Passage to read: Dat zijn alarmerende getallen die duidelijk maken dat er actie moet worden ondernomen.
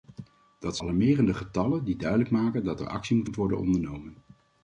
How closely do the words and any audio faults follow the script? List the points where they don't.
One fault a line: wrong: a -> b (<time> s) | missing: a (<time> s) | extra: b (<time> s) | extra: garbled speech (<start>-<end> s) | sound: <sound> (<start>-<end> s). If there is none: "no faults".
missing: zijn (0.8 s)
extra: moet (3.2 s)